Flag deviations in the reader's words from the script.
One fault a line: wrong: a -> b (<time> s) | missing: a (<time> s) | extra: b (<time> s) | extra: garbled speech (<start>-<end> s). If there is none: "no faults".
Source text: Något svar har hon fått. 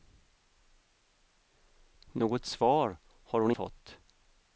no faults